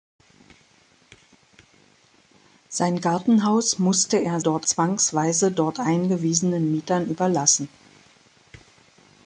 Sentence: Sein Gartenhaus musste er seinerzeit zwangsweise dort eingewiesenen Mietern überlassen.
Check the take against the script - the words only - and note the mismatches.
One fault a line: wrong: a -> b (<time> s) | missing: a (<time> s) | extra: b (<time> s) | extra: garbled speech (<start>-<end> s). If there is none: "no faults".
wrong: seinerzeit -> dort (4.4 s)